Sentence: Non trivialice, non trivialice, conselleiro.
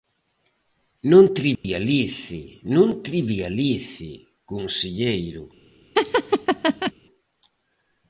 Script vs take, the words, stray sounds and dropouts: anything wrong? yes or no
yes